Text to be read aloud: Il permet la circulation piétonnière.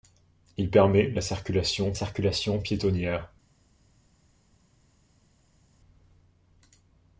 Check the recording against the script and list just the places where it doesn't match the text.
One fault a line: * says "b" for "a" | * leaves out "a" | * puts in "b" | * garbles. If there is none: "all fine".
* puts in "circulation"